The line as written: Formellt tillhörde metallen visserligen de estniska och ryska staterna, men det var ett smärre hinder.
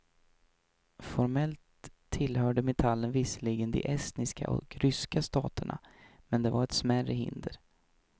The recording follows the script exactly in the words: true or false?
true